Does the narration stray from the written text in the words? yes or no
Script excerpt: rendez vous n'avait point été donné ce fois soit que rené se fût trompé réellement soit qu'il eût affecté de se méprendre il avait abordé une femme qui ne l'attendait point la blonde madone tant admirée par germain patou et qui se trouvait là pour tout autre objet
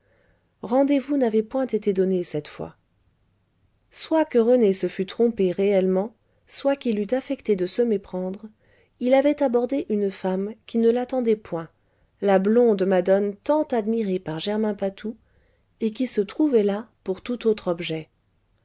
yes